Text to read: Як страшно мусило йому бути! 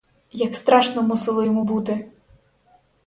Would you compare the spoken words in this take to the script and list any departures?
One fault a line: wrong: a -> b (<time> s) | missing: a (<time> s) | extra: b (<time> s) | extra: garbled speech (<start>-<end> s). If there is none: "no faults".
no faults